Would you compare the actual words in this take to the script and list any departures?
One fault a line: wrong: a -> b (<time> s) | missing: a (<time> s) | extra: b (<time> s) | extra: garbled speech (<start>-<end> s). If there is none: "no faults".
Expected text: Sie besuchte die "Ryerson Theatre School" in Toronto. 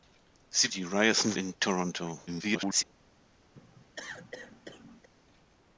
missing: besuchte (0.7 s)
missing: Theatre School (1.4 s)
extra: garbled speech (2.3-2.8 s)